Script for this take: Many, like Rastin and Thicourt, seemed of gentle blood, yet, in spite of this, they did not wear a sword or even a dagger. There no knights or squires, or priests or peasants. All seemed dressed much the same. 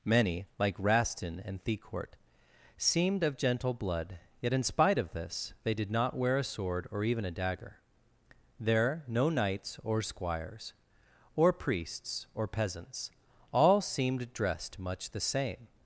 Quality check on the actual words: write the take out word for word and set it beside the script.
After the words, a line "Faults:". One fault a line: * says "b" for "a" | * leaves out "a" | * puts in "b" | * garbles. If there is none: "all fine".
Many, like Rastin and Thicourt, seemed of gentle blood, yet, in spite of this, they did not wear a sword or even a dagger. There no knights or squires, or priests or peasants. All seemed dressed much the same.
Faults:
all fine